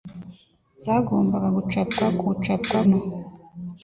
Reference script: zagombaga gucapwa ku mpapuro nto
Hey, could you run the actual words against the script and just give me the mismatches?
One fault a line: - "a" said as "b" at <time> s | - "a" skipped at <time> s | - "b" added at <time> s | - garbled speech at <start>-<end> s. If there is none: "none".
- "mpapuro" said as "gucapwa" at 2.3 s